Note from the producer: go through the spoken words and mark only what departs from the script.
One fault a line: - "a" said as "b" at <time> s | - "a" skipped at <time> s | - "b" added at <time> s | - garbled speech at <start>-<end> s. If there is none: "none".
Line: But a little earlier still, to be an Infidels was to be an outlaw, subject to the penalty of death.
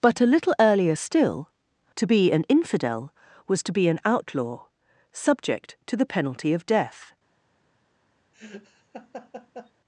- "Infidels" said as "Infidel" at 2.5 s